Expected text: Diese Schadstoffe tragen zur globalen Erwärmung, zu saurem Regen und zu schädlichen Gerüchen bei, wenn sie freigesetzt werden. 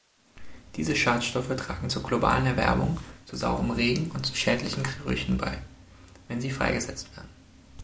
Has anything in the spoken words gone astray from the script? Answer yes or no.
no